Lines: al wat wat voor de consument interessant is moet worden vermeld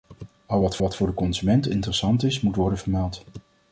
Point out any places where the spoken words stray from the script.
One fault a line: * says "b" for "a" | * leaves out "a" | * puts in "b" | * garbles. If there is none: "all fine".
all fine